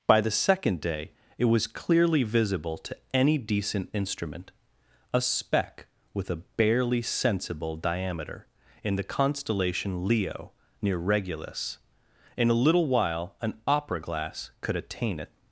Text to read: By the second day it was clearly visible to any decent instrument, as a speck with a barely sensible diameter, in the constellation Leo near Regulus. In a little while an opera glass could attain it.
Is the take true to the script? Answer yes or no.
no